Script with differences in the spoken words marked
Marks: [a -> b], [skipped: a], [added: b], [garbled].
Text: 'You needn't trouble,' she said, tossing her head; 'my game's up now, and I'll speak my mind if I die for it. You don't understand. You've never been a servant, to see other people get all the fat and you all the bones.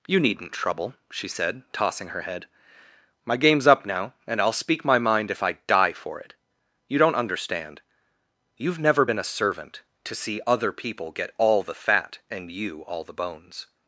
'You needn't trouble,' she said, tossing her head; 'my game's up now, and I'll speak my mind if I die for it. You don't understand. You've never been a servant, to see other people get all the fat and you all the bones.